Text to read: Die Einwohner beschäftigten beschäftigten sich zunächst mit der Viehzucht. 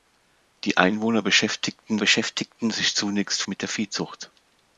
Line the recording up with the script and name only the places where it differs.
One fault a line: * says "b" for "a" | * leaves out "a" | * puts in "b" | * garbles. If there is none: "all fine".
all fine